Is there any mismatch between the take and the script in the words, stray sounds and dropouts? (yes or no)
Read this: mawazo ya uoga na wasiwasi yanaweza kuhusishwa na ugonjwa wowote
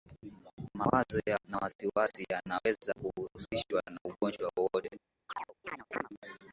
yes